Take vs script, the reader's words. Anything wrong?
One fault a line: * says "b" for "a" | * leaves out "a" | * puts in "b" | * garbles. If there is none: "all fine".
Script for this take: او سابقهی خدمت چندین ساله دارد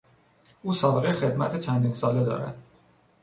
all fine